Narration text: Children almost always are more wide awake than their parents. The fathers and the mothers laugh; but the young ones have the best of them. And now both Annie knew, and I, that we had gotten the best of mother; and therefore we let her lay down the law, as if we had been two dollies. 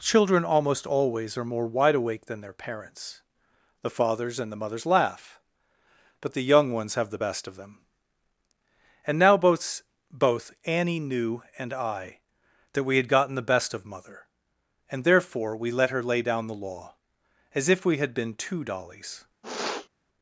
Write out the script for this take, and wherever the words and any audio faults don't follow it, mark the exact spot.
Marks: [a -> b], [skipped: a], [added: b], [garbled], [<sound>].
Children almost always are more wide awake than their parents. The fathers and the mothers laugh; but the young ones have the best of them. And now both [added: both] Annie knew, and I, that we had gotten the best of mother; and therefore we let her lay down the law, as if we had been two dollies. [sniff]